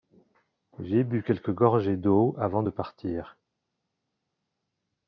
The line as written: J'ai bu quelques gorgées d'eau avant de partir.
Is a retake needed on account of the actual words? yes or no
no